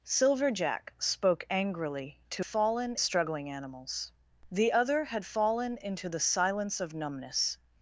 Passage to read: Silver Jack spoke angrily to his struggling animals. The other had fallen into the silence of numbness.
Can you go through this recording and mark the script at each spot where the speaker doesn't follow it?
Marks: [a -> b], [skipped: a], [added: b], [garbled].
Silver Jack spoke angrily to [his -> fallen] struggling animals. The other had fallen into the silence of numbness.